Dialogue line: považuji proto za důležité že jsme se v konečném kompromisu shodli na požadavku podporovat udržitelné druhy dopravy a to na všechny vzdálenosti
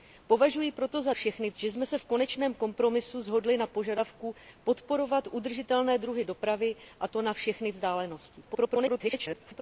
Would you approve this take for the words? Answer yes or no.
no